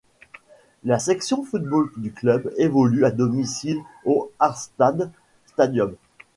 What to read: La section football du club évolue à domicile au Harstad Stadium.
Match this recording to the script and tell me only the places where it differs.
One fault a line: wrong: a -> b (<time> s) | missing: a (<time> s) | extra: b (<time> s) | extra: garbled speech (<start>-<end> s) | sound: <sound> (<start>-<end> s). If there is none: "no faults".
no faults